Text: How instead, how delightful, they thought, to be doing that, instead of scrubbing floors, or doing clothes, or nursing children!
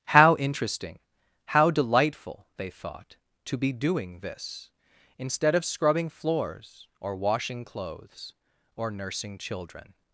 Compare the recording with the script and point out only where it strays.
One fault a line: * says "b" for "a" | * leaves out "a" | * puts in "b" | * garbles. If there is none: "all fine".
* says "interesting" for "instead"
* says "this" for "that"
* says "washing" for "doing"